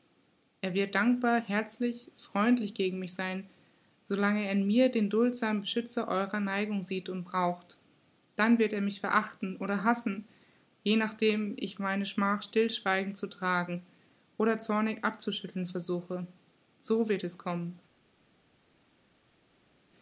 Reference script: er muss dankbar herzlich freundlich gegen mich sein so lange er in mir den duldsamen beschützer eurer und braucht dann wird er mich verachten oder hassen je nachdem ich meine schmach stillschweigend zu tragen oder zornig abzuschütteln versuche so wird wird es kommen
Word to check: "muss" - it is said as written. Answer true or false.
false